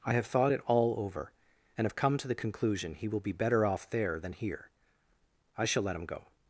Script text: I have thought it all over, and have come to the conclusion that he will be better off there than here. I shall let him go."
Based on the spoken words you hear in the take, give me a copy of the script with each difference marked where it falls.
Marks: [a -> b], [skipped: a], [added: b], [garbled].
I have thought it all over, and have come to the conclusion [skipped: that] he will be better off there than here. I shall let him go."